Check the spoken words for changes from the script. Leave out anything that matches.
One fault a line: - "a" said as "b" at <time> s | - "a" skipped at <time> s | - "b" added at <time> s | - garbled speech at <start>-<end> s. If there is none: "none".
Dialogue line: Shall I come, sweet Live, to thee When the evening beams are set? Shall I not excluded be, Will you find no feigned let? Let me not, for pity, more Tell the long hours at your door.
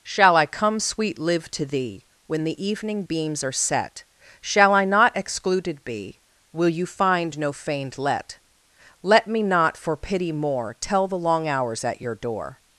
none